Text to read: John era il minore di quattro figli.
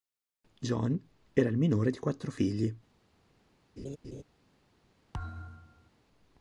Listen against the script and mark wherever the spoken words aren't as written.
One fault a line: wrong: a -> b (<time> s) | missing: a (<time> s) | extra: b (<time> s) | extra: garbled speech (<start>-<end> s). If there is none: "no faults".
no faults